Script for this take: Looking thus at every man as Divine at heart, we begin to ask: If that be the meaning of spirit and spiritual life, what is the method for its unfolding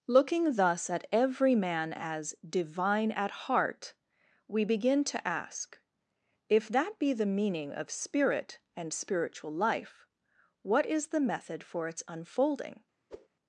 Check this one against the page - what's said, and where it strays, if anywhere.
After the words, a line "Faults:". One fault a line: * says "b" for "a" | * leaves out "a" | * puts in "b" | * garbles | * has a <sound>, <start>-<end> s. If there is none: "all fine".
Looking thus at every man as Divine at heart, we begin to ask: If that be the meaning of spirit and spiritual life, what is the method for its unfolding
Faults:
* has a whoosh, 13.1-13.3 s